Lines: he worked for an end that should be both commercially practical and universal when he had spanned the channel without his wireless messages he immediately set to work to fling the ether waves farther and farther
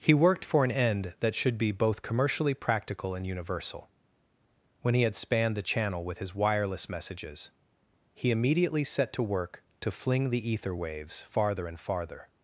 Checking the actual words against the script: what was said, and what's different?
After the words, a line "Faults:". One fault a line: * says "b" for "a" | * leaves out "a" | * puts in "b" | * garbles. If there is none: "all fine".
he worked for an end that should be both commercially practical and universal when he had spanned the channel with his wireless messages he immediately set to work to fling the ether waves farther and farther
Faults:
* says "with" for "without"